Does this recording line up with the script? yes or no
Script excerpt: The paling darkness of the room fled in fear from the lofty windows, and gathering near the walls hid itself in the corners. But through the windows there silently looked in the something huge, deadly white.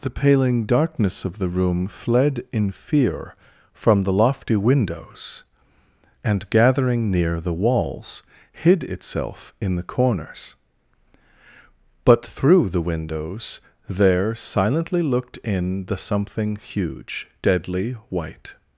yes